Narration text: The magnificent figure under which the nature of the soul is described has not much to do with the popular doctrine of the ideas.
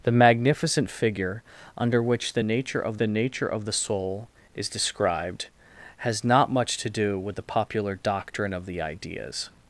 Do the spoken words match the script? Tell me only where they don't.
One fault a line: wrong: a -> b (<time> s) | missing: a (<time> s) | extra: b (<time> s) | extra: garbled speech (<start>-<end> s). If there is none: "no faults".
extra: nature of the (3.1 s)